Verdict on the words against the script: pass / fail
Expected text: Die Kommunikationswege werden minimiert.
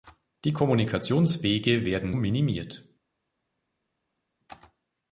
pass